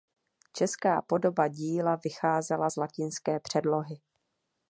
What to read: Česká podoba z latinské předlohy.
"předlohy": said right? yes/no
yes